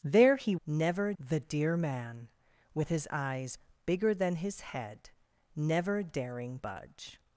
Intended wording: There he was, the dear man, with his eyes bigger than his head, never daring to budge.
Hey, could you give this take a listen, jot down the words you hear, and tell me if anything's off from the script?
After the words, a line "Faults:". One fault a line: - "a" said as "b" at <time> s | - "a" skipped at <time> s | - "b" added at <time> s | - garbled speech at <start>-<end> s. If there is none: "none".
There he never, the dear man, with his eyes bigger than his head, never daring budge.
Faults:
- "was" said as "never" at 0.7 s
- "to" skipped at 6.6 s